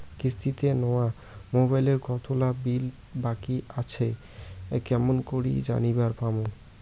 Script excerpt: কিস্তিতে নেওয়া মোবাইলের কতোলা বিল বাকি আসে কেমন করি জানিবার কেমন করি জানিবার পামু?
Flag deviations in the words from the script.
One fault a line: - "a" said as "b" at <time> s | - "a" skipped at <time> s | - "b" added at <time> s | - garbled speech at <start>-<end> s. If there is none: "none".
- "কেমন করি জানিবার" skipped at 6.1 s